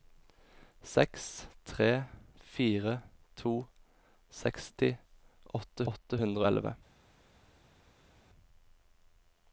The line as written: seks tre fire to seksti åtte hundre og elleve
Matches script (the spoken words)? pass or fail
fail